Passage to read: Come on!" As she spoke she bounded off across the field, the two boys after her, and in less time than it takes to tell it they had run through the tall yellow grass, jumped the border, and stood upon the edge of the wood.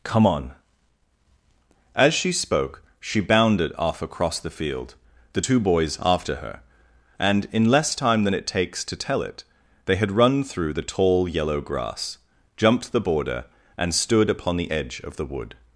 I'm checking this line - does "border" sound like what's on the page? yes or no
yes